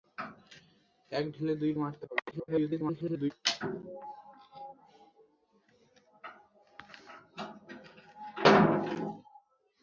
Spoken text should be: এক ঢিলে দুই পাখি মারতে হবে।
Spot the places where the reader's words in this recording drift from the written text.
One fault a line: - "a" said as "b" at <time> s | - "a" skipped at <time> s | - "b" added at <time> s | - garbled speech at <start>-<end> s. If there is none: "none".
- "পাখি" skipped at 1.7 s
- garbled speech at 2.3-3.3 s